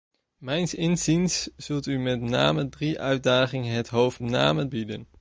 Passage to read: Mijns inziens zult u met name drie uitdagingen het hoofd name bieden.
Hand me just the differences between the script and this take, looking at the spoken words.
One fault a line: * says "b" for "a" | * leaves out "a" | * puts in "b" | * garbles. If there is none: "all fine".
all fine